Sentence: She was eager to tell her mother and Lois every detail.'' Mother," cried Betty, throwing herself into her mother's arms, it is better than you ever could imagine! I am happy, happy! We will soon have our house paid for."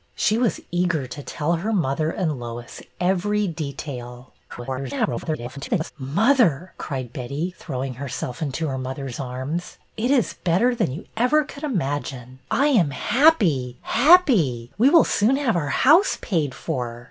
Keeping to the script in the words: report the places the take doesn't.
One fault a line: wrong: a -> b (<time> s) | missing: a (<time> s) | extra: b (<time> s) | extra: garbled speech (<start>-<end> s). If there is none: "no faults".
extra: garbled speech (4.5-5.9 s)